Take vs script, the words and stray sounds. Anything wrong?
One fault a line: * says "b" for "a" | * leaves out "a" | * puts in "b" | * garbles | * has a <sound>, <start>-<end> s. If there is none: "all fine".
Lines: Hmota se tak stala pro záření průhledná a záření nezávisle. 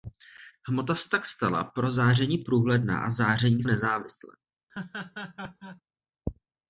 * has a laugh, 4.7-5.8 s